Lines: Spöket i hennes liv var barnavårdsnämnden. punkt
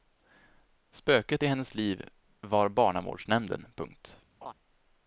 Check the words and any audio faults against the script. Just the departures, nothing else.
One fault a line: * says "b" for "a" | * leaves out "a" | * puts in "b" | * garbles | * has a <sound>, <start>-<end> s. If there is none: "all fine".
* has a laugh, 4.4-4.5 s